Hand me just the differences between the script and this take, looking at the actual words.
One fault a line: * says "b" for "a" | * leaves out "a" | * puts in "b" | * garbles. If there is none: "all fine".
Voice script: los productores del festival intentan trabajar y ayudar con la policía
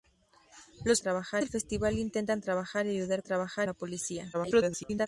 * says "trabajar" for "productores"
* says "trabajar" for "con"
* garbles